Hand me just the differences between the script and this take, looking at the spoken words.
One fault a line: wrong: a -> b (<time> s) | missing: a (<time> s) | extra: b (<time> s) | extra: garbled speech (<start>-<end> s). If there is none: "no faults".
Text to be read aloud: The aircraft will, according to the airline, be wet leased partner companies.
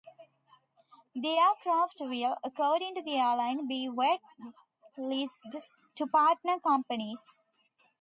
extra: to (5.9 s)